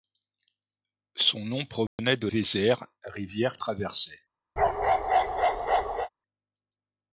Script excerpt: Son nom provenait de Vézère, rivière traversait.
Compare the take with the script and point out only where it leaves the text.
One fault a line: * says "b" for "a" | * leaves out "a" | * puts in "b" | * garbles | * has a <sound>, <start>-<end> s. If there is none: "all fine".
* has a dropout, 1.9-2.0 s
* has a bark, 4.6-6.1 s